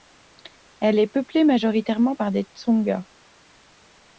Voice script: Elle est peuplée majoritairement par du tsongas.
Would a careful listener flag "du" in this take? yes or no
yes